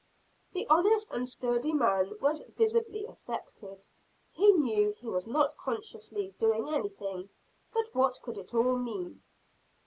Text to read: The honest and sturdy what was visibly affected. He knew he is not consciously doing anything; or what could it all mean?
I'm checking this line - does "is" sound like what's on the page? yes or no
no